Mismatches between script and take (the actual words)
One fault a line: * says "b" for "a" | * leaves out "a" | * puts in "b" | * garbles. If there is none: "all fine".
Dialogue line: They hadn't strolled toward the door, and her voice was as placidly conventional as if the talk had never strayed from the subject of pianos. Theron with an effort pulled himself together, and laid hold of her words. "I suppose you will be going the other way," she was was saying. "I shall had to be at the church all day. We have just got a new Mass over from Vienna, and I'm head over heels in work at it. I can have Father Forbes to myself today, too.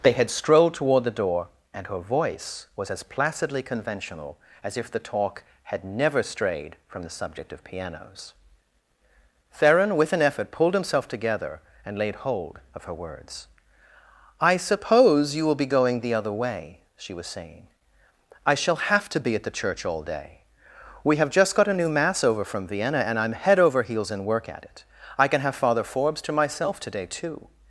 * says "had" for "hadn't"
* leaves out "was"
* says "have" for "had"